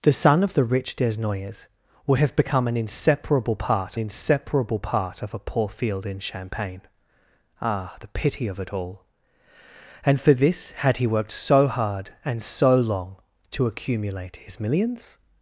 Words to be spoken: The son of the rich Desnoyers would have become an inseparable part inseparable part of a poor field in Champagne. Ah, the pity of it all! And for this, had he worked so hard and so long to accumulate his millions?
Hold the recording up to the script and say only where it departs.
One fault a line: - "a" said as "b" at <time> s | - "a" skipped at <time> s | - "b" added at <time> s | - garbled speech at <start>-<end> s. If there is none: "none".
none